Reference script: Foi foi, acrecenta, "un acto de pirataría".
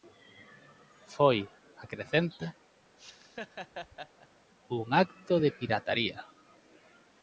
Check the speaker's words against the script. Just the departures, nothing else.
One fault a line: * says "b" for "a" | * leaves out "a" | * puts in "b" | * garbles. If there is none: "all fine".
* leaves out "foi"